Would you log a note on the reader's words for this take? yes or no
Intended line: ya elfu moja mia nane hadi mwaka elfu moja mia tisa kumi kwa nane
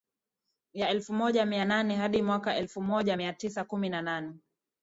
yes